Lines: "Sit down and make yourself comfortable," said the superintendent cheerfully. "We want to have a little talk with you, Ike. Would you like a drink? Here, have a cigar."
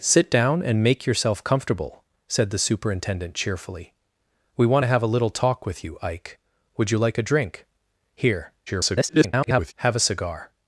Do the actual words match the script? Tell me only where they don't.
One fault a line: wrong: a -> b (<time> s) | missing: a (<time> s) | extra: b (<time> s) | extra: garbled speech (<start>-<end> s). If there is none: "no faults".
extra: garbled speech (8.7-9.7 s)